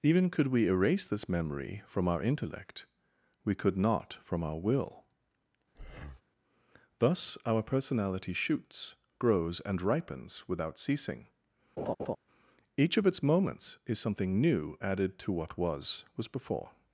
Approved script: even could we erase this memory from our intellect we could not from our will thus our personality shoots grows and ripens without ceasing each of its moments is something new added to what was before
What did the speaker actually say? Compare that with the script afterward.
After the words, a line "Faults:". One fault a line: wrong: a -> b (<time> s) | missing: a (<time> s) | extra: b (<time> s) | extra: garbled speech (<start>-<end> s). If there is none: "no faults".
even could we erase this memory from our intellect we could not from our will thus our personality shoots grows and ripens without ceasing each of its moments is something new added to what was was before
Faults:
extra: was (16.2 s)